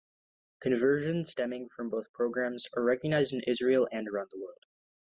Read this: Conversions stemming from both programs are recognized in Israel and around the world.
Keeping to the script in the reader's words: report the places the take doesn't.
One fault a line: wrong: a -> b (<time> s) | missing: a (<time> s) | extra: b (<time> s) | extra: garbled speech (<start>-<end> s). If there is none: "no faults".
no faults